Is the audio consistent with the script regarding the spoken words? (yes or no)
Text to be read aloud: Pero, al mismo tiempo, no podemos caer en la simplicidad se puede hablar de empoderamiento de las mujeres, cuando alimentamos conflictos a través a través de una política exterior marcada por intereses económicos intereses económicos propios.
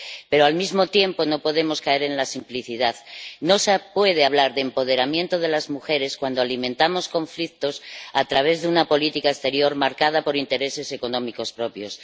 no